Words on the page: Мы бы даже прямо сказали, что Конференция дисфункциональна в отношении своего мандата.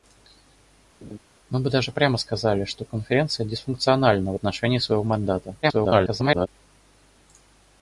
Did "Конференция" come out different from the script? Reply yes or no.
no